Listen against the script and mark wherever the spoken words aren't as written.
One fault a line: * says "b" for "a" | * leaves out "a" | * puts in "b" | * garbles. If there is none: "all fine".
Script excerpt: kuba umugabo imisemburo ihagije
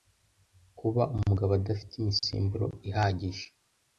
* puts in "adafite"